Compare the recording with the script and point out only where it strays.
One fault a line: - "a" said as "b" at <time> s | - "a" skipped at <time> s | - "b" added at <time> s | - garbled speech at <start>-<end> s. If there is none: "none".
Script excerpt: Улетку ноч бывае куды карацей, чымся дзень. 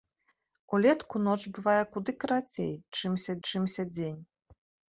- "чымся" added at 3.5 s